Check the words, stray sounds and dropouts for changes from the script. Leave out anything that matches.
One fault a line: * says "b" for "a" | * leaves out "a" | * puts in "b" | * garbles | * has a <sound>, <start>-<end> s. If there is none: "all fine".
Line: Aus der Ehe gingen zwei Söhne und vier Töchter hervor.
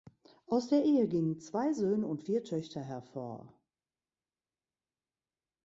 all fine